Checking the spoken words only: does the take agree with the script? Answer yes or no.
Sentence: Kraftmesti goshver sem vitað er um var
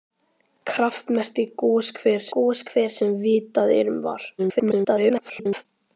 no